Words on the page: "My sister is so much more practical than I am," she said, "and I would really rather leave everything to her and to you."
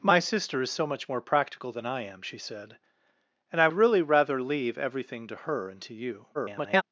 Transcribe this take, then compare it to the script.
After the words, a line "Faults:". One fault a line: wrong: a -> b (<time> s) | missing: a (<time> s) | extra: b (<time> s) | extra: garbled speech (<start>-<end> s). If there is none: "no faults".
"My sister is so much more practical than I am," she said, "and I really rather leave everything to her and to you." [garbled]
Faults:
missing: would (3.7 s)
extra: garbled speech (6.3-6.8 s)